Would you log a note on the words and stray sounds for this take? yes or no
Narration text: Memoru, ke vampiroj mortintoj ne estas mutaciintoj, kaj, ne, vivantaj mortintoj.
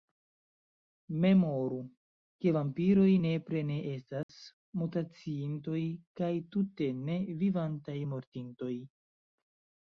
yes